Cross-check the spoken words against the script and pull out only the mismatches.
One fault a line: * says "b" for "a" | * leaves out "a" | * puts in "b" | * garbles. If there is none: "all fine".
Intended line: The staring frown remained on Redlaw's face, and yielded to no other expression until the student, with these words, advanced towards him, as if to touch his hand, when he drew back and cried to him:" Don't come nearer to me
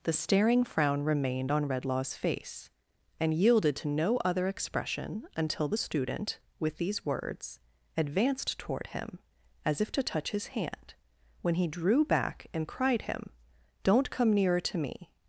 * says "toward" for "towards"
* leaves out "to"